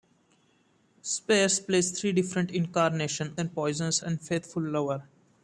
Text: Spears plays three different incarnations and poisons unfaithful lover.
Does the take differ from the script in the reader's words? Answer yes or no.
no